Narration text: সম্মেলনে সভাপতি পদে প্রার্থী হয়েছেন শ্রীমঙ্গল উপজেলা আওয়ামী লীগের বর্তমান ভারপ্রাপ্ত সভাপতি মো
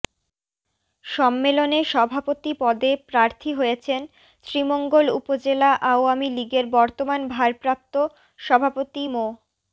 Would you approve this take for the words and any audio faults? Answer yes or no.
yes